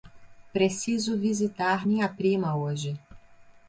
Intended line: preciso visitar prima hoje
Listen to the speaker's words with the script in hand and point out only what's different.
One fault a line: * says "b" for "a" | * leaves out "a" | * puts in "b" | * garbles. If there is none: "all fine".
* puts in "minha"